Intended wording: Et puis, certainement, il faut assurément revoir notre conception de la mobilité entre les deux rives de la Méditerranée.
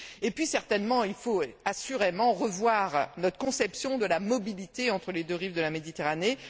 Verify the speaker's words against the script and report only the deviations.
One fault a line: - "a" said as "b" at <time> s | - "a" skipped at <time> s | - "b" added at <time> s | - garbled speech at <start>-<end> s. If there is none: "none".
none